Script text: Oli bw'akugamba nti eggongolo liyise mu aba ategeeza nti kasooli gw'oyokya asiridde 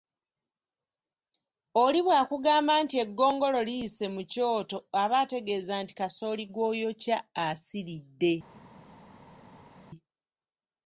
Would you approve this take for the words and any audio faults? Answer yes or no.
no